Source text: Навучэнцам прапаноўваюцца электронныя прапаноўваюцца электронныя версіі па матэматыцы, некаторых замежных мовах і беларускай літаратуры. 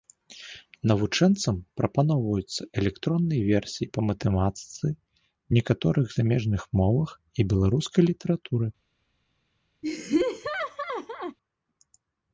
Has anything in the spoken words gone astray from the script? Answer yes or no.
yes